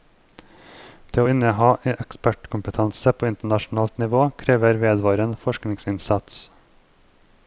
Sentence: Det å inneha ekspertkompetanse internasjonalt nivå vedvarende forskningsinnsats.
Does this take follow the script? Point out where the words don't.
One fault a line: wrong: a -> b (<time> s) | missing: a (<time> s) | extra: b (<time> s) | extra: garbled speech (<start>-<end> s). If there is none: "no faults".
extra: på (3.2 s)
extra: krever (4.4 s)